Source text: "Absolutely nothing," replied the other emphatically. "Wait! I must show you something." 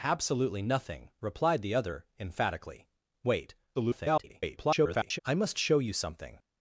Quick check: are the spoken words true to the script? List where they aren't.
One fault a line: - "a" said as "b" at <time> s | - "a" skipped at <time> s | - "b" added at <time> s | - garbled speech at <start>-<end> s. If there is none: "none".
- garbled speech at 3.7-5.2 s